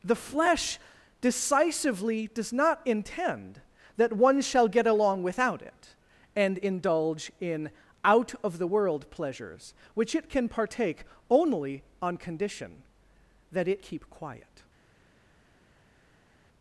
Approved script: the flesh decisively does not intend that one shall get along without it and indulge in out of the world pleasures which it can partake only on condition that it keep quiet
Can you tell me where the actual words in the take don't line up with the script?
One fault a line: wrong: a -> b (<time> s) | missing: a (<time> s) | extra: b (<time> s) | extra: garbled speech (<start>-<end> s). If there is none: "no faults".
no faults